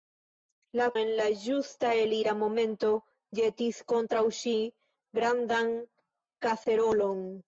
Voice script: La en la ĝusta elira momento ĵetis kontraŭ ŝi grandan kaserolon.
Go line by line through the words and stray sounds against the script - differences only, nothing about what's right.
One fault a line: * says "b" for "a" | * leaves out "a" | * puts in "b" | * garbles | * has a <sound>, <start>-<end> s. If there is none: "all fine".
all fine